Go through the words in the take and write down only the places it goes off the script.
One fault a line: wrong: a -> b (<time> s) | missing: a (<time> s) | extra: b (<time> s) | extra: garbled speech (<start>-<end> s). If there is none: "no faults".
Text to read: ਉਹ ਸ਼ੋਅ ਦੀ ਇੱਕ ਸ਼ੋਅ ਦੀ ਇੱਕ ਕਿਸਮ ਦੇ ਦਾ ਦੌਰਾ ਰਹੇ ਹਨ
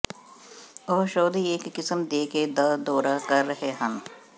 missing: ਸ਼ੋਅ ਦੀ ਇੱਕ (1.7 s)
extra: ਕੇ (2.2 s)
extra: ਕਰ (3.3 s)